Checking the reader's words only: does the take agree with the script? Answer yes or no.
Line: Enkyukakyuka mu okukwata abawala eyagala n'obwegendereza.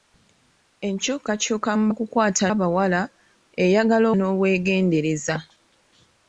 yes